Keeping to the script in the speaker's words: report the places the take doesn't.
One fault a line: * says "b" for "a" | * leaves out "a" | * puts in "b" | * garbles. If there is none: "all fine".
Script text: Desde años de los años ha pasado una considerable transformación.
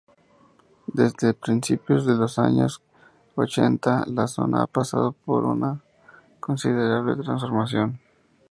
* says "principios" for "años"
* puts in "ochenta la zona"
* puts in "por"